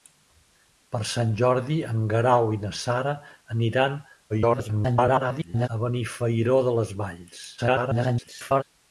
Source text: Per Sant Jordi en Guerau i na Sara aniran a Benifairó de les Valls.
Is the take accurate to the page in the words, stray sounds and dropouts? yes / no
no